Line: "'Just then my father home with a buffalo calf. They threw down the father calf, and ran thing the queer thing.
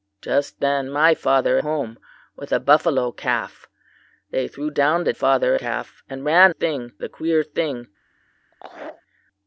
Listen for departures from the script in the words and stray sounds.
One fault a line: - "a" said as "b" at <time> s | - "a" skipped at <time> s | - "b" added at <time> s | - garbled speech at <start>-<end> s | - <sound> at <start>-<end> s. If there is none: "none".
- laugh at 8.5-9.0 s